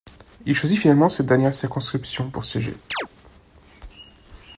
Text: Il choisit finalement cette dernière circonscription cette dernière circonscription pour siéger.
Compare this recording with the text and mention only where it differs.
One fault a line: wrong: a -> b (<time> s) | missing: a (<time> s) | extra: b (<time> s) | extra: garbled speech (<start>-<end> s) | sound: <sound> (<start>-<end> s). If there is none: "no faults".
missing: cette dernière circonscription (2.3 s)
sound: chirp (2.9-3.1 s)